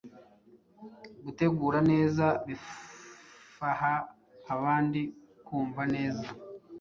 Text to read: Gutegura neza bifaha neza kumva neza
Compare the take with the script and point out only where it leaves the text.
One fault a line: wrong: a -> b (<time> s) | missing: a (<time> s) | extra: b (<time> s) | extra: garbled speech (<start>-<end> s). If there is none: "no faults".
wrong: neza -> abandi (4.5 s)